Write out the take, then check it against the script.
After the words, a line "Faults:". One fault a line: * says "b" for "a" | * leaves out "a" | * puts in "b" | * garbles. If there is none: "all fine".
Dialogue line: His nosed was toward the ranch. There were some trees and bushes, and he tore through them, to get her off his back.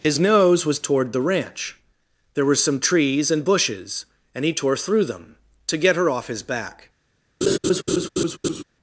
His nose was toward the ranch. There were some trees and bushes, and he tore through them, to get her off his back.
Faults:
* says "nose" for "nosed"